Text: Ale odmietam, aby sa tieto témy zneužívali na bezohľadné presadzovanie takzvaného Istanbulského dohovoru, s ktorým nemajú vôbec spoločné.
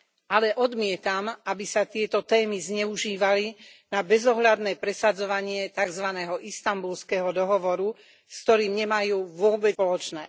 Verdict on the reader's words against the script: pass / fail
pass